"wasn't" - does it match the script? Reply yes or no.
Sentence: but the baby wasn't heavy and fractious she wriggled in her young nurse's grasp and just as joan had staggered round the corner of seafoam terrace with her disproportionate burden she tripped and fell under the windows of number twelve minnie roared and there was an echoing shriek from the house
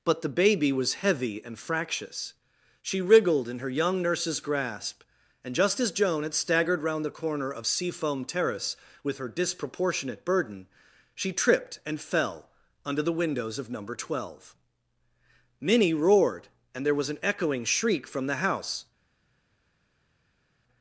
no